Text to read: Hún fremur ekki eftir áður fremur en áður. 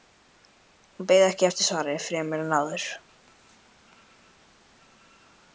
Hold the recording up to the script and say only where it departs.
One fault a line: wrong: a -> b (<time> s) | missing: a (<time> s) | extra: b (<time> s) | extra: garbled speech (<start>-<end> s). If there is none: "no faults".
wrong: fremur -> beið (1.1 s)
wrong: áður -> svari (1.7 s)